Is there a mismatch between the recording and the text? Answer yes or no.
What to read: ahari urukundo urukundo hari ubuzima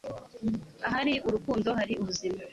yes